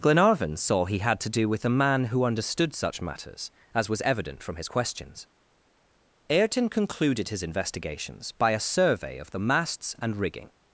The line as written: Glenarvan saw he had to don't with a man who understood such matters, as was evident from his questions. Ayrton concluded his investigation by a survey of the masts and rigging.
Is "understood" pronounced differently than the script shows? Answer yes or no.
no